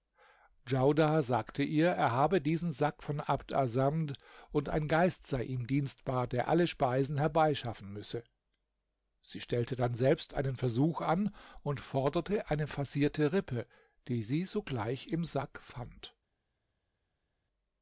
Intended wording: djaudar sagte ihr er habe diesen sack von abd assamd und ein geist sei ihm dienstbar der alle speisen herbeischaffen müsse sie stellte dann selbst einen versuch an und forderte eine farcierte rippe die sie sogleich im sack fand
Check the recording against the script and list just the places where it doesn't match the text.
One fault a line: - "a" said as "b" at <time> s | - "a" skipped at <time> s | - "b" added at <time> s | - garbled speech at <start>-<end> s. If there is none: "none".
none